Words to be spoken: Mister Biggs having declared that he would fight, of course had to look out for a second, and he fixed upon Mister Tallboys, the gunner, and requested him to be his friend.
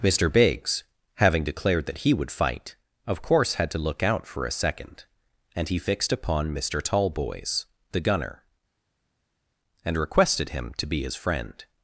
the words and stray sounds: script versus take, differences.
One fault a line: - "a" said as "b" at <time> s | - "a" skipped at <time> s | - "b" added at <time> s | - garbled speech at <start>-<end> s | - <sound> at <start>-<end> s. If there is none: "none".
none